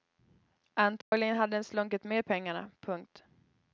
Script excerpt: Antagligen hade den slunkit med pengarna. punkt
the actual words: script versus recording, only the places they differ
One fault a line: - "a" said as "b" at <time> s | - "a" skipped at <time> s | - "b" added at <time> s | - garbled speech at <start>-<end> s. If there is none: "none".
none